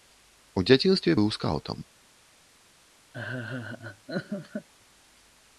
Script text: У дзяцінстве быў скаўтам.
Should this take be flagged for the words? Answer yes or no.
no